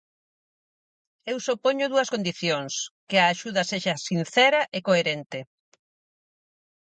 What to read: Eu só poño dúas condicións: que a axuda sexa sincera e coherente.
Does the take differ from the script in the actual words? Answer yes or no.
no